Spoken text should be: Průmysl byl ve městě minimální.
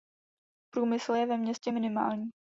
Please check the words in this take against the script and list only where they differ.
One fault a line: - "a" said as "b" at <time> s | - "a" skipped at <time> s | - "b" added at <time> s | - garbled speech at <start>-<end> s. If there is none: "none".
- "byl" said as "je" at 1.1 s